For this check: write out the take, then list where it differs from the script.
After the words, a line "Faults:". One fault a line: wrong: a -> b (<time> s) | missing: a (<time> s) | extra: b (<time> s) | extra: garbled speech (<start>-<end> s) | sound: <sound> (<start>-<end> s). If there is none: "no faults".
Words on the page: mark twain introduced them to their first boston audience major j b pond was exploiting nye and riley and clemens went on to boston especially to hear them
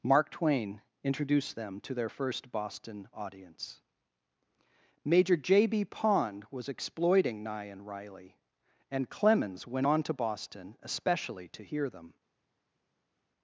mark twain introduced them to their first boston audience major j b pond was exploiting nye and riley and clemens went on to boston especially to hear them
Faults:
no faults